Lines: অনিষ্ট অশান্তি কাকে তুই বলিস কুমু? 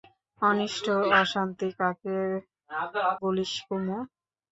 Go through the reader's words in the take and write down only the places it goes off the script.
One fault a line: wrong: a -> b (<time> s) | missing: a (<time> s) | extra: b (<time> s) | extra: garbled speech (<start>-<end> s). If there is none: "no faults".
missing: তুই (2.2 s)